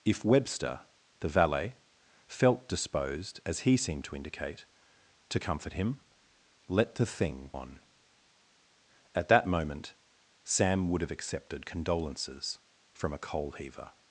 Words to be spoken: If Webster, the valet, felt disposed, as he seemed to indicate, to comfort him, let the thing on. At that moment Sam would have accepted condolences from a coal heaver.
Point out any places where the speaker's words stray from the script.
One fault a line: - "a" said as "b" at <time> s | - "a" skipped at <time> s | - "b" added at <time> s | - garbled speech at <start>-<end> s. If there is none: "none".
none